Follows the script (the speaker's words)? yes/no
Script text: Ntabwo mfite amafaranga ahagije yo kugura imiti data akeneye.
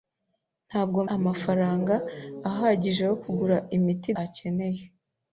no